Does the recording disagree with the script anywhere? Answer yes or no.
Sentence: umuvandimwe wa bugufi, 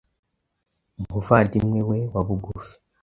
yes